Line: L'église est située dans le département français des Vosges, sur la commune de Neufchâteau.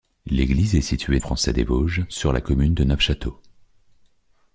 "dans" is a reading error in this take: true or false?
true